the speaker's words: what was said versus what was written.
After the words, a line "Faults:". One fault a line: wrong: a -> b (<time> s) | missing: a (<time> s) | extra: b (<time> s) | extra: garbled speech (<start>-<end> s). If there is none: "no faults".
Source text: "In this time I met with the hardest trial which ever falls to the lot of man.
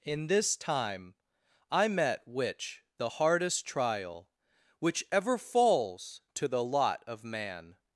"In this time I met which the hardest trial which ever falls to the lot of man.
Faults:
wrong: with -> which (2.3 s)